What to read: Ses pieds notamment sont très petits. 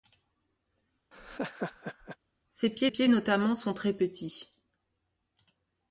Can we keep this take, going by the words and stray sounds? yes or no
no